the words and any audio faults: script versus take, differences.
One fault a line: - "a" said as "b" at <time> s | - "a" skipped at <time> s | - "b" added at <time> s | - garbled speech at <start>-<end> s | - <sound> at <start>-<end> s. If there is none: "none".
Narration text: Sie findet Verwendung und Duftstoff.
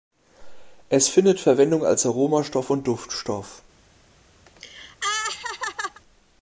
- "Sie" said as "Es" at 0.9 s
- "als Aromastoff" added at 1.9 s
- laugh at 4.5-6.0 s